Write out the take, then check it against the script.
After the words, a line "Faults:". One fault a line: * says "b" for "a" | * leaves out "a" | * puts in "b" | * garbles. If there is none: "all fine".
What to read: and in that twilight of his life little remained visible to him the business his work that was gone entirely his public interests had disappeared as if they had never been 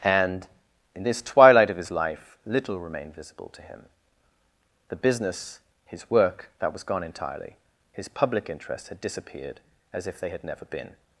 and in this twilight of his life little remained visible to him the business his work that was gone entirely his public interests had disappeared as if they had never been
Faults:
* says "this" for "that"